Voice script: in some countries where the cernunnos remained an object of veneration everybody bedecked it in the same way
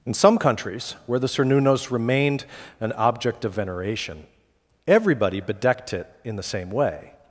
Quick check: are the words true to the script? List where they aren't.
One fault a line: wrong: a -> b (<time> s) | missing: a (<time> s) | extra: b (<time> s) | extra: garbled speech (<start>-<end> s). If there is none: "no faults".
no faults